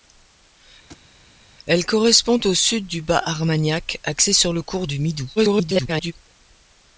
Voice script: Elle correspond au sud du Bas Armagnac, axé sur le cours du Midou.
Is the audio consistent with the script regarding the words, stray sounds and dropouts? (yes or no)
no